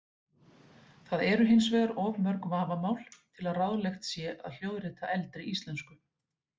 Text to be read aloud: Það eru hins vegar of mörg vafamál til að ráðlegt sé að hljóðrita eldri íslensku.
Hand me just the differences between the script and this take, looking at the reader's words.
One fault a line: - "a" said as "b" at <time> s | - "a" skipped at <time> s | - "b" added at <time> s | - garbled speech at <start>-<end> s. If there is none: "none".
none